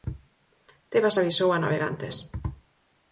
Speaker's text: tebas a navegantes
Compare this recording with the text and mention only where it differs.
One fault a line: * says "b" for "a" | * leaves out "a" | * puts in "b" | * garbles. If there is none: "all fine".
* puts in "avisou"